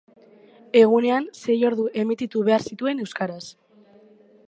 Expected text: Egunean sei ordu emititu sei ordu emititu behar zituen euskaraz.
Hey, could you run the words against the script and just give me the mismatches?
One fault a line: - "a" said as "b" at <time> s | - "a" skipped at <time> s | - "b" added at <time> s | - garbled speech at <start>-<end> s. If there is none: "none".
- "sei ordu emititu" skipped at 2.5 s